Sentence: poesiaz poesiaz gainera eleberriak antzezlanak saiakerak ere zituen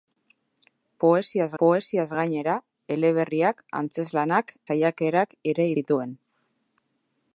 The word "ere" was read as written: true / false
true